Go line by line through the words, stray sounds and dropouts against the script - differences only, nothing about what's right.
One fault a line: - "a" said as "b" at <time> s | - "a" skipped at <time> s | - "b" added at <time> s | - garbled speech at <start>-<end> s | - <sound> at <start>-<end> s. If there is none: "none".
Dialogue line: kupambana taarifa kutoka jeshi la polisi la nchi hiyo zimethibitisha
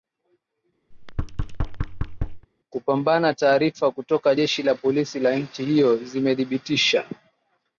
- thud at 0.9-2.5 s